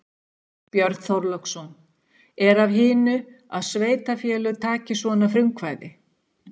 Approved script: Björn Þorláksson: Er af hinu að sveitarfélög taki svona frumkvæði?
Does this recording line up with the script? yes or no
yes